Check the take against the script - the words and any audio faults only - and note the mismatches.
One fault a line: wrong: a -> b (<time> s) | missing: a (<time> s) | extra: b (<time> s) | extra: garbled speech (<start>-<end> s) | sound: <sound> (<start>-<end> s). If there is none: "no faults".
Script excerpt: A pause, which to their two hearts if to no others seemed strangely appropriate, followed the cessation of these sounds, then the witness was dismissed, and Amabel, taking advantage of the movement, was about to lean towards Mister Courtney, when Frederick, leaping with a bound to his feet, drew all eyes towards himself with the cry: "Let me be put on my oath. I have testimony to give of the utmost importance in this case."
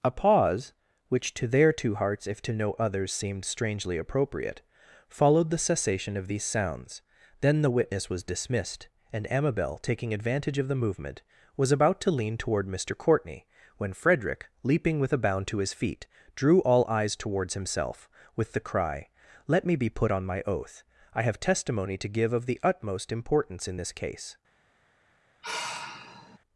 wrong: towards -> toward (12.3 s)
sound: sigh (25.4-26.4 s)